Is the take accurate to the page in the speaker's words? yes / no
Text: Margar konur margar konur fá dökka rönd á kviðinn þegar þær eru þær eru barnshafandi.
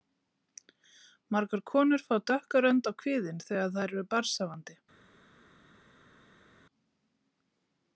no